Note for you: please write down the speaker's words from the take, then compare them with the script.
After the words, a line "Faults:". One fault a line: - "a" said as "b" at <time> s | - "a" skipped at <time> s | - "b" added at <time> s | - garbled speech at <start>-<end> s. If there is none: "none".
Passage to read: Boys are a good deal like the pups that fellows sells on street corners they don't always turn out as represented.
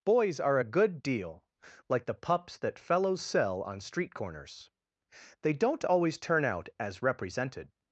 Boys are a good deal like the pups that fellows sell on street corners they don't always turn out as represented.
Faults:
- "sells" said as "sell" at 3.2 s